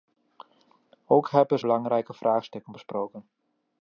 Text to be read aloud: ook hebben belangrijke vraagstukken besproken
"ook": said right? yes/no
yes